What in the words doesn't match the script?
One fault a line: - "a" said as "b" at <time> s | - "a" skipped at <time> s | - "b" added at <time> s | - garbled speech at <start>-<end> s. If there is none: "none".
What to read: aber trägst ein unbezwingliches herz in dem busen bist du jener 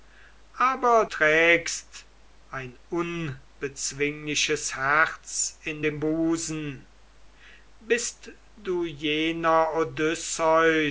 none